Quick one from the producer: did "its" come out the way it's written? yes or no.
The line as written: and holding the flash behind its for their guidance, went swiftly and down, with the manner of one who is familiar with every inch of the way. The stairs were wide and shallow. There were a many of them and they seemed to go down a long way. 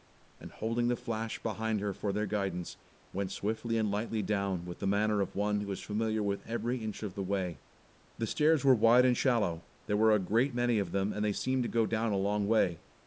no